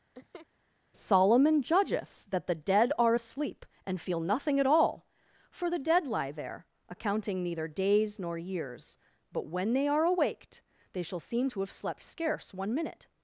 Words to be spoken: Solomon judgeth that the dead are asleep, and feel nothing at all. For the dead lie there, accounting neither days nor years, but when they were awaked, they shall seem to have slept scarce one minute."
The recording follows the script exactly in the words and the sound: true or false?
false